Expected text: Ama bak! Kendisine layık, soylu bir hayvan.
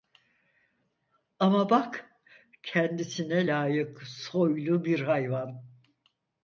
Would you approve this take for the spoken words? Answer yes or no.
yes